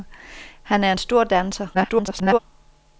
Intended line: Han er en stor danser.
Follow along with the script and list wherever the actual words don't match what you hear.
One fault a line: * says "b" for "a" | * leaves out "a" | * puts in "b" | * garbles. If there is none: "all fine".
* garbles